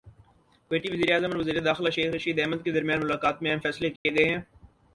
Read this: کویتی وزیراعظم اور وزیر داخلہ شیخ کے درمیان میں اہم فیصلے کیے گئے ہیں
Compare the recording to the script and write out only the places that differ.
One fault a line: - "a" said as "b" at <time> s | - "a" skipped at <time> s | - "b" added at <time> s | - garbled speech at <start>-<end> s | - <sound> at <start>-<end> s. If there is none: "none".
- "رشید احمد" added at 2.1 s
- "ملاقات" added at 3.0 s
- dropout at 4.0-4.1 s